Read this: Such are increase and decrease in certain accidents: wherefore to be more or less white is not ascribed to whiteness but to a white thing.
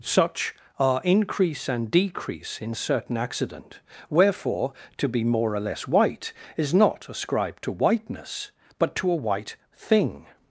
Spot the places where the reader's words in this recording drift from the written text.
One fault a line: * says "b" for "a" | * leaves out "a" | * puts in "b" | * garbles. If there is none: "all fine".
* says "accident" for "accidents"